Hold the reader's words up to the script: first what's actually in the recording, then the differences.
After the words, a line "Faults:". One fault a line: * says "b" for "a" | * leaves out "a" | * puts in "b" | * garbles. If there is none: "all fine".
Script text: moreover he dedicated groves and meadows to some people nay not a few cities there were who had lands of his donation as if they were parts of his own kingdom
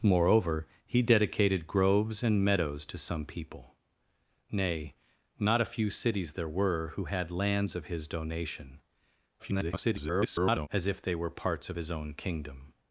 moreover he dedicated groves and meadows to some people nay not a few cities there were who had lands of his donation [garbled] as if they were parts of his own kingdom
Faults:
* garbles